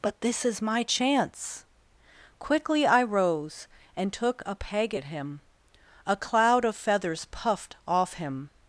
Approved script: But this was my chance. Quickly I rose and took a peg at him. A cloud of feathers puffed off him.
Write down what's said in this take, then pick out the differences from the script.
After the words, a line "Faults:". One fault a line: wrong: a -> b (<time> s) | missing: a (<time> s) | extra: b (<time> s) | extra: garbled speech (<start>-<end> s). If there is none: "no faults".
But this is my chance. Quickly I rose and took a peg at him. A cloud of feathers puffed off him.
Faults:
wrong: was -> is (0.5 s)